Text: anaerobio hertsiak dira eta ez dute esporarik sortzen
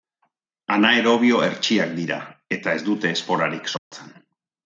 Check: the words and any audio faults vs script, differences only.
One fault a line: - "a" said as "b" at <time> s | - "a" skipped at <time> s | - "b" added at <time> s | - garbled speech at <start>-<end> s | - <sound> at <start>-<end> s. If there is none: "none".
- dropout at 3.8-3.9 s